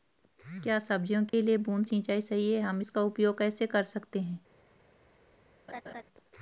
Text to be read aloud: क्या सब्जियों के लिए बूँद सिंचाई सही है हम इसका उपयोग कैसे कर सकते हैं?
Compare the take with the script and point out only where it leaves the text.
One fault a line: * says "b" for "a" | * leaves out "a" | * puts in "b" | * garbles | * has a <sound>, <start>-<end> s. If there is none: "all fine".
* has a dropout, 1.3-1.3 s
* has a laugh, 5.7-6.0 s